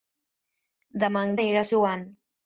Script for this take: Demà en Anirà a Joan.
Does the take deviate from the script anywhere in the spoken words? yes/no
no